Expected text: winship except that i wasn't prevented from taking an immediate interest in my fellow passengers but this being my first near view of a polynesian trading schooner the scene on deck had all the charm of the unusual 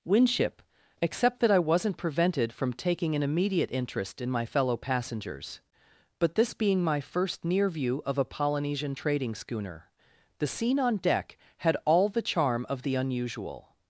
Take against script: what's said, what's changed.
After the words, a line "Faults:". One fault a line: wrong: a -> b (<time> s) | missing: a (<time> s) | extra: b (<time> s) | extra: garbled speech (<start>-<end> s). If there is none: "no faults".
winship except that i wasn't prevented from taking an immediate interest in my fellow passengers but this being my first near view of a polynesian trading schooner the scene on deck had all the charm of the unusual
Faults:
no faults